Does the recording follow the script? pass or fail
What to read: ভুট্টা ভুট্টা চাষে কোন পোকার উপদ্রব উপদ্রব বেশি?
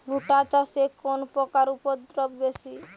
fail